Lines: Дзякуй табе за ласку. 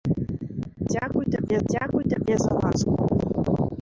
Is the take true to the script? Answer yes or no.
no